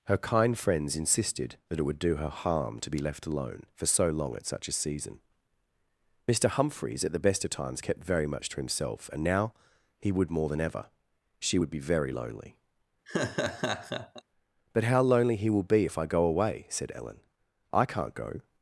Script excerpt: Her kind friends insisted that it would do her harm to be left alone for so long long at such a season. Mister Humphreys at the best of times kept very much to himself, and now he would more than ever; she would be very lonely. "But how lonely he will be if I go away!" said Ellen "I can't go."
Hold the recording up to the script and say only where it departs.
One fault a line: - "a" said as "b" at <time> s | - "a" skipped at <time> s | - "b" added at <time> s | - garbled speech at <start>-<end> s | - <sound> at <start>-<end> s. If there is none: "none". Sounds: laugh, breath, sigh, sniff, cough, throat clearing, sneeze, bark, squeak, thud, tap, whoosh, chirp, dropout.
- "long" skipped at 4.3 s
- laugh at 13.1-14.2 s